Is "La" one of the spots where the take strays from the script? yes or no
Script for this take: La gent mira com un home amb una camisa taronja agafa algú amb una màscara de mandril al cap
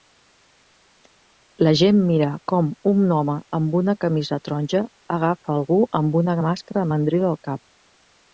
no